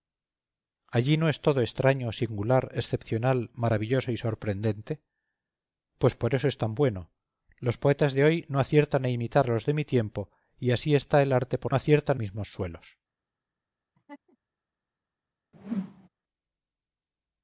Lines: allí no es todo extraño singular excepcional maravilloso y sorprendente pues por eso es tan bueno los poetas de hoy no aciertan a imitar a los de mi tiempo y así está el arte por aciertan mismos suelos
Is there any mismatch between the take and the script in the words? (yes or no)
no